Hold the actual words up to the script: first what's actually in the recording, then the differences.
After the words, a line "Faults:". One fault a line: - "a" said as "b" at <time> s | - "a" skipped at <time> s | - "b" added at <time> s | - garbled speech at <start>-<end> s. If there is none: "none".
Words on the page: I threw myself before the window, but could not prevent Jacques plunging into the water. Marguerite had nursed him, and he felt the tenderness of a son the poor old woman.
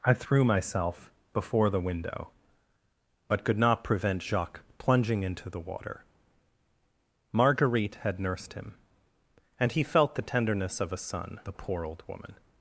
I threw myself before the window, but could not prevent Jacques plunging into the water. Marguerite had nursed him, and he felt the tenderness of a son the poor old woman.
Faults:
none